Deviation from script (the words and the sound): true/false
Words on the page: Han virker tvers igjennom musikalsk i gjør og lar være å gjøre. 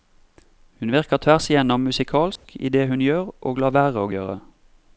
true